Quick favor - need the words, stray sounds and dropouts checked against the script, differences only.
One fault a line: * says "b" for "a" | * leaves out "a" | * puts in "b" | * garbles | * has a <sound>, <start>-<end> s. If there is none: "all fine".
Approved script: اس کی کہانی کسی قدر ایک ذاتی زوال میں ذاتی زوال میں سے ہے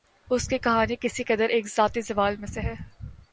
* leaves out "ذاتی زوال میں"